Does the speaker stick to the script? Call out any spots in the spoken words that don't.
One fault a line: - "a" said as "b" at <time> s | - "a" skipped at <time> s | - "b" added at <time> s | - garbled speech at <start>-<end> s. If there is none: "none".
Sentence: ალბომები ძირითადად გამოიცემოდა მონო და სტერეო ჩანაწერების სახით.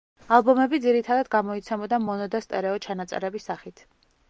none